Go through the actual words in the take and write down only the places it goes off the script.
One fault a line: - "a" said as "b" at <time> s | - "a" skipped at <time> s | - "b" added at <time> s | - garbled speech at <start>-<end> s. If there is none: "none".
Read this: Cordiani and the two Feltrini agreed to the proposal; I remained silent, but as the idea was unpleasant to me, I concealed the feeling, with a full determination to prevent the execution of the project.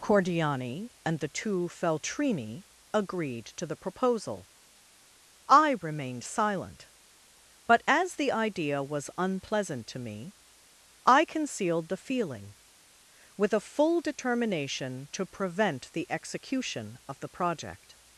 none